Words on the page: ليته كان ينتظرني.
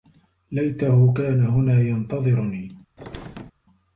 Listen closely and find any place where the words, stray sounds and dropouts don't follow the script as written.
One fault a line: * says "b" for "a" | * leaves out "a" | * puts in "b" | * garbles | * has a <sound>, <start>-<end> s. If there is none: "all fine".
* puts in "هنا"
* has a squeak, 3.0-3.5 s